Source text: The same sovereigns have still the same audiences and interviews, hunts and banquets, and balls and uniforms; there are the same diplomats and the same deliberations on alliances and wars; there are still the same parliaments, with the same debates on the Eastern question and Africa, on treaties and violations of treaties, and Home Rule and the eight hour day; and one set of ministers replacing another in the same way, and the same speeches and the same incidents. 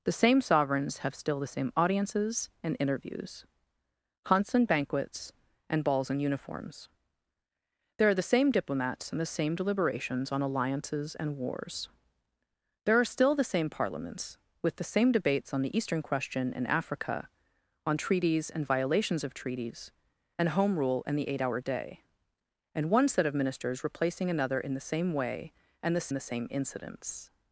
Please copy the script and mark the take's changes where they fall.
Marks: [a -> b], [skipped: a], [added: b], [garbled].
The same sovereigns have still the same audiences and interviews, hunts and banquets, and balls and uniforms; there are the same diplomats and the same deliberations on alliances and wars; there are still the same parliaments, with the same debates on the Eastern question and Africa, on treaties and violations of treaties, and Home Rule and the eight hour day; and one set of ministers replacing another in the same way, and the [skipped: same speeches and] the same incidents.